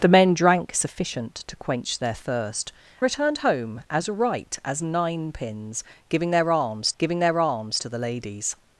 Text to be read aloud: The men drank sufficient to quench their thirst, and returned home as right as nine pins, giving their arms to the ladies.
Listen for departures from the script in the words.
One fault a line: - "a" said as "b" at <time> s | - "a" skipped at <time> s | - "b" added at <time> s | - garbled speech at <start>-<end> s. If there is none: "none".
- "and" skipped at 2.7 s
- "giving their arms" added at 7.0 s